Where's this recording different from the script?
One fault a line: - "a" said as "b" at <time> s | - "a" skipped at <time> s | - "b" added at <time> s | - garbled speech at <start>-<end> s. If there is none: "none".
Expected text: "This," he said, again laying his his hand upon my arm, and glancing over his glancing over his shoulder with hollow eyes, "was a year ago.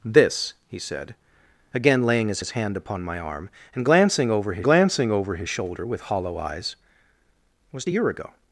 none